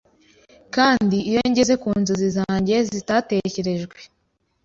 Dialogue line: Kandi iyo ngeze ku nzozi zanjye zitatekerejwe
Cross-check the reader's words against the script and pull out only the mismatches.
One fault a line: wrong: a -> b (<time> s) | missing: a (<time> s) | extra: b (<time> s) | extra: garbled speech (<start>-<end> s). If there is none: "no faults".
no faults